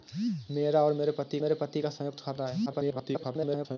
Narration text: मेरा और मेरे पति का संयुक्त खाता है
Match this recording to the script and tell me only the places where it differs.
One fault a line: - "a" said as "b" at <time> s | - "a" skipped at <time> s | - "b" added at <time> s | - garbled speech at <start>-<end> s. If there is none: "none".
- "मेरे पति" added at 1.4 s
- garbled speech at 2.7-3.8 s